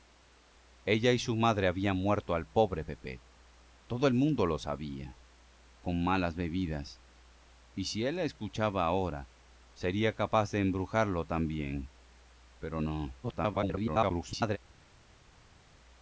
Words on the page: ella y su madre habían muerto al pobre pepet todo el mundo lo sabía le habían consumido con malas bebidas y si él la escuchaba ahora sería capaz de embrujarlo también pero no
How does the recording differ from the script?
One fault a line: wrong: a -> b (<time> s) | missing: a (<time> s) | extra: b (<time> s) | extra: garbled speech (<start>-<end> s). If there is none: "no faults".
missing: le habían consumido (5.2 s)
extra: garbled speech (13.2-14.6 s)